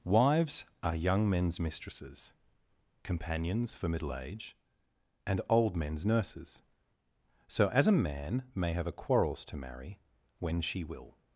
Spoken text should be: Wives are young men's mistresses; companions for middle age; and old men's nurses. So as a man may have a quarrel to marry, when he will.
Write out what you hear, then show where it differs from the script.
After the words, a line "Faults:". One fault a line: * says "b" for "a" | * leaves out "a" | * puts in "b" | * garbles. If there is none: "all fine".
Wives are young men's mistresses; companions for middle age; and old men's nurses. So as a man may have a quarrels to marry, when she will.
Faults:
* says "quarrels" for "quarrel"
* says "she" for "he"